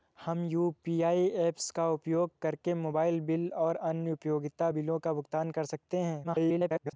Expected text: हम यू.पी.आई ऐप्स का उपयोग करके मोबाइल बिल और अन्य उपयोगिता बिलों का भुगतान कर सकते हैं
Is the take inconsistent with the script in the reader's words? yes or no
yes